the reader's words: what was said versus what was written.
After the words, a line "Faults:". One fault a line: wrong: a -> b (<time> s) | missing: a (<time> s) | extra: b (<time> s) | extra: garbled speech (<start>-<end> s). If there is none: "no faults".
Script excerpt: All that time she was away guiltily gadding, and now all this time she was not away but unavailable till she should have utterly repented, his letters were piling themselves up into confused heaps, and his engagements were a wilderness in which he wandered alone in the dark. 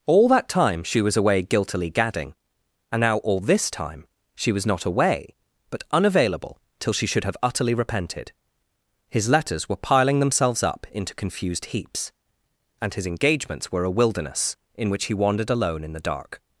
All that time she was away guiltily gadding, and now all this time she was not away but unavailable till she should have utterly repented, his letters were piling themselves up into confused heaps, and his engagements were a wilderness in which he wandered alone in the dark.
Faults:
no faults